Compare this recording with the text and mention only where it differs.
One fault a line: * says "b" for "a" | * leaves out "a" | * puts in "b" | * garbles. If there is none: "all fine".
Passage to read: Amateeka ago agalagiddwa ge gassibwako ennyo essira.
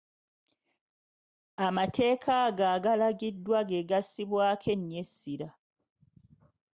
all fine